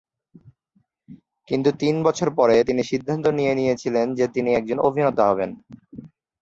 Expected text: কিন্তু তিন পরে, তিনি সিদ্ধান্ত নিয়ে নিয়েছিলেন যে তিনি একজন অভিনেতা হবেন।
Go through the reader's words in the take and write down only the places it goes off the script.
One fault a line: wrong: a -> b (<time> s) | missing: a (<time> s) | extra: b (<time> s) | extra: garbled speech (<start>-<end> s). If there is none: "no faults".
extra: বছর (2.0 s)